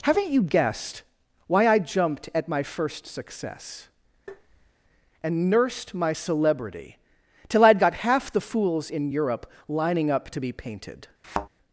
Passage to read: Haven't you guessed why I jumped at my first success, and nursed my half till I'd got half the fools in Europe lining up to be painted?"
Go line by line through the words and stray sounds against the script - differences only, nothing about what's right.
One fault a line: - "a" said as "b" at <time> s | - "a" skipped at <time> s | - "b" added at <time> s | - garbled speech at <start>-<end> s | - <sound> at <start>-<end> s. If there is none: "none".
- tap at 4.3-4.7 s
- "half" said as "celebrity" at 6.1 s
- thud at 11.2-11.5 s